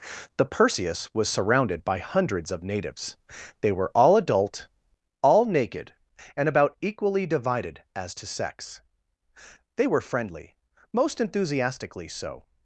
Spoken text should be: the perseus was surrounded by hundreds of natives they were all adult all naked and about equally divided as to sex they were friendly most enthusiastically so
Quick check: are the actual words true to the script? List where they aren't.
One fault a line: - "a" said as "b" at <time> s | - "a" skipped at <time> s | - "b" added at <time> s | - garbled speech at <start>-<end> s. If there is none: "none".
none